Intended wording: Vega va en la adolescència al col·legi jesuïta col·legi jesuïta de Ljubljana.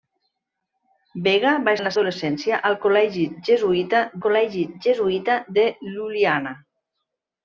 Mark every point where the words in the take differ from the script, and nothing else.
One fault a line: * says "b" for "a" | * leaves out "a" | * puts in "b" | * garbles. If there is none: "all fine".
all fine